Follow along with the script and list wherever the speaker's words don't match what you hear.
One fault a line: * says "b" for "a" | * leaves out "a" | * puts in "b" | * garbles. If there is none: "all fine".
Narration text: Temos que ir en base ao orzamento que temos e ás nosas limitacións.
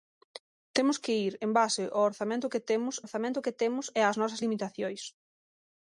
* puts in "orzamento que temos"